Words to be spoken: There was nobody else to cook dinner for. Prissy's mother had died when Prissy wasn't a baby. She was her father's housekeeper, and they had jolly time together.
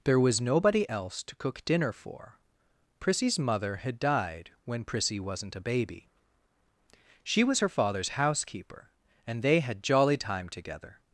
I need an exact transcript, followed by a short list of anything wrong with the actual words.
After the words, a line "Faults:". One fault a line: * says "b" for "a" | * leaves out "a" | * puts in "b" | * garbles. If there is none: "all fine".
There was nobody else to cook dinner for. Prissy's mother had died when Prissy wasn't a baby. She was her father's housekeeper, and they had jolly time together.
Faults:
all fine